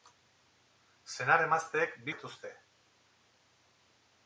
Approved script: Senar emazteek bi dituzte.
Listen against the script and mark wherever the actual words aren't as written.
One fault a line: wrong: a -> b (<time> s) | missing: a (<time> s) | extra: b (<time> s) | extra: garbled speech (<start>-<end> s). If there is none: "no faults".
no faults